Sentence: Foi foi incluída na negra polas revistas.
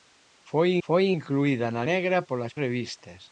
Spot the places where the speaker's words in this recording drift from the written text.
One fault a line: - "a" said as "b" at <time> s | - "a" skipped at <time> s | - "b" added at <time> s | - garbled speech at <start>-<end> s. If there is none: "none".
none